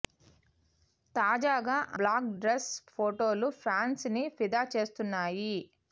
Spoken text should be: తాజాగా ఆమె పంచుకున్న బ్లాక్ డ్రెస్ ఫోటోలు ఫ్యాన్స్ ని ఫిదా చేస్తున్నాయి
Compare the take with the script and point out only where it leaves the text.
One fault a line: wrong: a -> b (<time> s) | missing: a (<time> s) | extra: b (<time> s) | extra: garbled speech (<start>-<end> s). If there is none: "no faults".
missing: ఆమె పంచుకున్న (1.8 s)